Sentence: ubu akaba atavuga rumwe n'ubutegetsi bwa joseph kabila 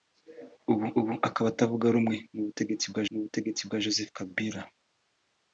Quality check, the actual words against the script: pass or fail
fail